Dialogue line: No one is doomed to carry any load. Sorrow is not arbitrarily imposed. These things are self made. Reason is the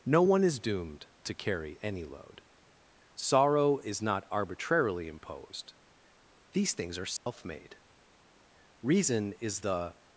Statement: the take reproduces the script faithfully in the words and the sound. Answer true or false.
false